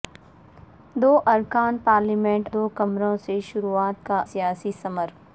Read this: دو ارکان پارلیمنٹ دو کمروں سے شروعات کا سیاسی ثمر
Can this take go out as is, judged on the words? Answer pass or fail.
pass